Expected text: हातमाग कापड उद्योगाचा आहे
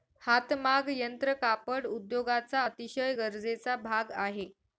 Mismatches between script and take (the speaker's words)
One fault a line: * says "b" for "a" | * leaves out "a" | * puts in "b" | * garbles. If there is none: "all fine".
* puts in "यंत्र"
* puts in "अतिशय गरजेचा भाग"